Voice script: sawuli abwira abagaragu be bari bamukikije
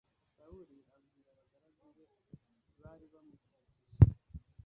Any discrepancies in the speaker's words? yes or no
no